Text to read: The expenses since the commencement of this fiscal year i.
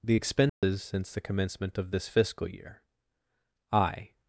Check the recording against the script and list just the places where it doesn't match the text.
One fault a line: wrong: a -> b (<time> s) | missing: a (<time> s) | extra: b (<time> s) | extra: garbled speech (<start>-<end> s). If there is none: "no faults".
no faults